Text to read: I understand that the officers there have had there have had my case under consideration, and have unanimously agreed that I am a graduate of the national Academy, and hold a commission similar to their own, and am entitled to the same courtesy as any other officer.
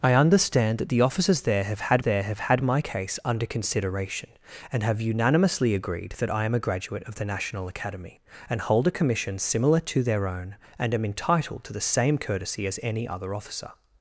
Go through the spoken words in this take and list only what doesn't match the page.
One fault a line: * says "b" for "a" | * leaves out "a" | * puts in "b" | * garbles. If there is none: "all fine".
all fine